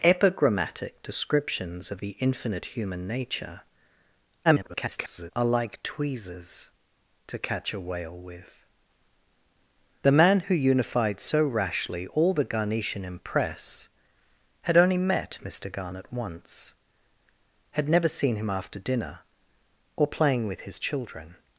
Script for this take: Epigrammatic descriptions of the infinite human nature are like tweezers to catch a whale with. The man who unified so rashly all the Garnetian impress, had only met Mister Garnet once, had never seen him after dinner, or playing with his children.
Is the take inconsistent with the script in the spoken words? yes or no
yes